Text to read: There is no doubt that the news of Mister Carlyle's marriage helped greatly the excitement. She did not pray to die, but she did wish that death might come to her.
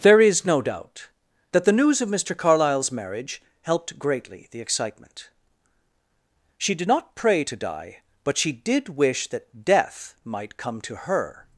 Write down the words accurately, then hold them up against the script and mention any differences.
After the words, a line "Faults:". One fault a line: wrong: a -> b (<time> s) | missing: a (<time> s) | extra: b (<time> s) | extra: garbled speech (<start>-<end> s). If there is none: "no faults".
There is no doubt that the news of Mister Carlyle's marriage helped greatly the excitement. She did not pray to die, but she did wish that death might come to her.
Faults:
no faults